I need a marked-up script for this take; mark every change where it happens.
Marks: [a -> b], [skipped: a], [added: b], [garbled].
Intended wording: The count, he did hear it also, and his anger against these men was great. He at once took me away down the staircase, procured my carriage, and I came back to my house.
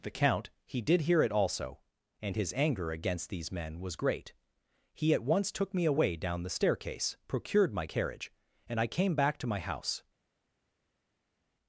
The count, he did hear it also, and his anger against these men was great. He at once took me away down the staircase, procured my carriage, and I came back to my house.